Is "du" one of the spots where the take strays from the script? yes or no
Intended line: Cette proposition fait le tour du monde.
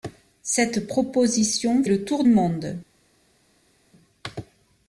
yes